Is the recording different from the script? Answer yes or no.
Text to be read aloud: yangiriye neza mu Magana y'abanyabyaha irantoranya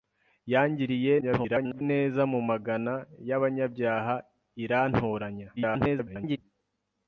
yes